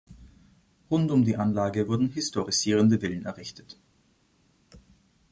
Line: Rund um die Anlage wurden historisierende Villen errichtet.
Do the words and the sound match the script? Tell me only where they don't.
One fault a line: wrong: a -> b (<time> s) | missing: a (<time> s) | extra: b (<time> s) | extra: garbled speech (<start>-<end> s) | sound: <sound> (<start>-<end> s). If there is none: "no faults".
no faults